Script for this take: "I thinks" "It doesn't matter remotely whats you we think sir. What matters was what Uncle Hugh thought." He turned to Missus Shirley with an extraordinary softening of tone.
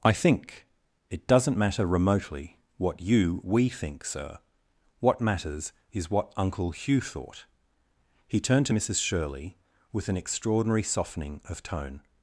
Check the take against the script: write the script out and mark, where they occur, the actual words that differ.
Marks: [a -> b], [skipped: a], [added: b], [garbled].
"I [thinks" -> think] "It doesn't matter remotely [whats -> what] you we think sir. What matters [was -> is] what Uncle Hugh thought." He turned to Missus Shirley with an extraordinary softening of tone.